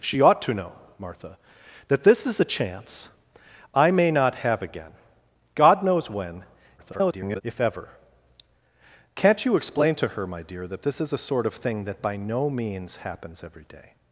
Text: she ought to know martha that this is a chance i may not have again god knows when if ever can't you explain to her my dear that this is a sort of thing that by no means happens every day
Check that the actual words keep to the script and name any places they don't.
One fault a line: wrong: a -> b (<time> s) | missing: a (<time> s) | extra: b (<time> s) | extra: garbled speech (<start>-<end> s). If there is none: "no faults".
extra: garbled speech (6.8-7.4 s)